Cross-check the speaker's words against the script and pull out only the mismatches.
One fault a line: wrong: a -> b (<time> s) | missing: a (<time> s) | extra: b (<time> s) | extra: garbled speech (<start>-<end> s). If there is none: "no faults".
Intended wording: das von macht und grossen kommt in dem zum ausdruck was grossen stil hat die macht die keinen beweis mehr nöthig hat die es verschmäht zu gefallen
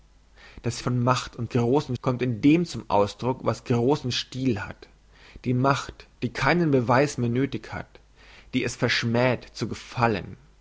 no faults